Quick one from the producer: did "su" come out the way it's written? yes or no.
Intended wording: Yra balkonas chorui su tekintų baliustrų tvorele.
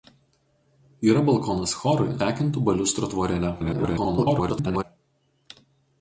no